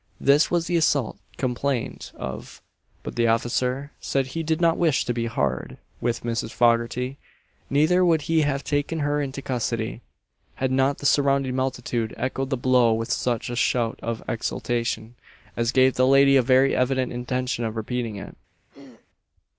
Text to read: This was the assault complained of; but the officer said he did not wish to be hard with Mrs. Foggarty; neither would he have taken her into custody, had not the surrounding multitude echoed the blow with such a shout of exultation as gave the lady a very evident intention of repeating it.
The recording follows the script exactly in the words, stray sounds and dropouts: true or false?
false